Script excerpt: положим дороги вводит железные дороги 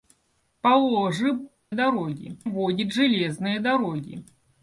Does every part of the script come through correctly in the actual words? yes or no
yes